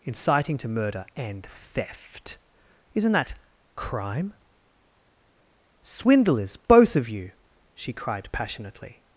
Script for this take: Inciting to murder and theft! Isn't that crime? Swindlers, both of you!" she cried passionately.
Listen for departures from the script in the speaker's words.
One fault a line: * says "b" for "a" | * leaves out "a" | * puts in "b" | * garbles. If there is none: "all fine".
all fine